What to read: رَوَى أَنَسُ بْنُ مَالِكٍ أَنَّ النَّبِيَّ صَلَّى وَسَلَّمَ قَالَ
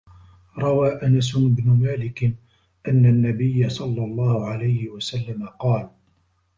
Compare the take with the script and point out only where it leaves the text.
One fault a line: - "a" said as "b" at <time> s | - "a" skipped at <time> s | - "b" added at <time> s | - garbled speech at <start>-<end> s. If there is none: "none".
- "اللَّهُ عَلَيْهِ" added at 4.0 s